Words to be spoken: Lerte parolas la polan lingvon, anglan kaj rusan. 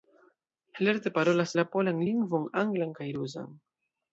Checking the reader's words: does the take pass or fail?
pass